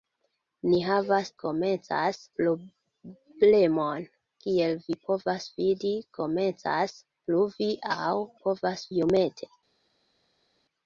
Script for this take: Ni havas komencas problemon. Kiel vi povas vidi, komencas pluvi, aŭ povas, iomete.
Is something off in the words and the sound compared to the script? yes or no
no